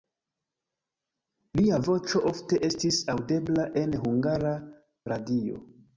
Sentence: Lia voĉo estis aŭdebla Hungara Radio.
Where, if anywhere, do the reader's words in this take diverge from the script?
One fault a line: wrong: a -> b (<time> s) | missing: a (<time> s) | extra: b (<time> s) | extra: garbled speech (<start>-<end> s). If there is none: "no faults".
extra: ofte (2.3 s)
extra: en (3.8 s)